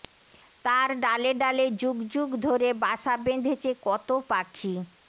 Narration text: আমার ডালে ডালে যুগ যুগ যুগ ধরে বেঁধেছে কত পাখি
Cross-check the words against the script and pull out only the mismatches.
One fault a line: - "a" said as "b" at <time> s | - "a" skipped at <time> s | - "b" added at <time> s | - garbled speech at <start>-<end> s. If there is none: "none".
- "আমার" said as "তার" at 0.7 s
- "যুগ ধরে" said as "ধরে বাসা" at 2.5 s